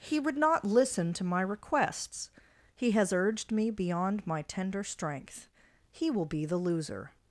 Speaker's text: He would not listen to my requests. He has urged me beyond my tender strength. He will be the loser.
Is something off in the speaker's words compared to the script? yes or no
no